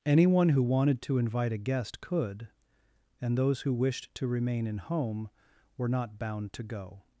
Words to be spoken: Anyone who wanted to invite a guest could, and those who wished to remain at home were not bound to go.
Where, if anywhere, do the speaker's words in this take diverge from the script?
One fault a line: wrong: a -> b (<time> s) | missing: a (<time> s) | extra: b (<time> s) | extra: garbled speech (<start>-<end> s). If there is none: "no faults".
wrong: at -> in (4.7 s)